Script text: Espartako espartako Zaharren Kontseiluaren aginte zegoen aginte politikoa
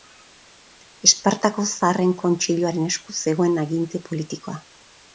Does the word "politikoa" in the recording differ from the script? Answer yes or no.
no